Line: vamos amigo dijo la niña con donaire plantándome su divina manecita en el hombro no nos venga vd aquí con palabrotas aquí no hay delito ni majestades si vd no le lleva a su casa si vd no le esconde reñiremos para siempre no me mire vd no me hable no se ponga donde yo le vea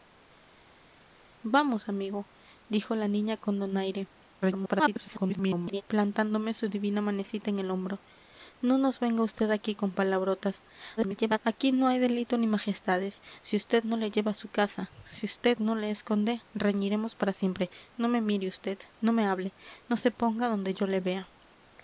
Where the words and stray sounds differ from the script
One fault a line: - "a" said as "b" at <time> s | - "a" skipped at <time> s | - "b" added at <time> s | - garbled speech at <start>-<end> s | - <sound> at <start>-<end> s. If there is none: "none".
- garbled speech at 4.4-5.8 s
- garbled speech at 11.0-11.4 s